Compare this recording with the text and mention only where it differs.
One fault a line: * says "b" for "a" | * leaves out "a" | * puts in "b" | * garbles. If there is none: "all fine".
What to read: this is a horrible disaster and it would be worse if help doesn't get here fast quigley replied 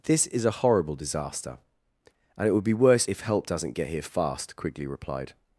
all fine